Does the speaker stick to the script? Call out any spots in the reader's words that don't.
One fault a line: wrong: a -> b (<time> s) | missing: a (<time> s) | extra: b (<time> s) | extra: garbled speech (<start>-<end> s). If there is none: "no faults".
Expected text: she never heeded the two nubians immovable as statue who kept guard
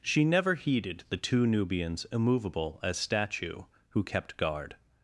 no faults